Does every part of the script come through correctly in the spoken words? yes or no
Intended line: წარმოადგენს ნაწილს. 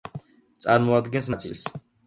yes